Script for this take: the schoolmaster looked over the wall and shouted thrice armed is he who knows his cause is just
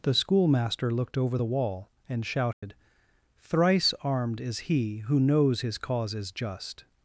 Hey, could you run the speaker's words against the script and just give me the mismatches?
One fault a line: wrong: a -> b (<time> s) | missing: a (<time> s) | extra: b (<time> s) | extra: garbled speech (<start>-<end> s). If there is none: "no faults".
no faults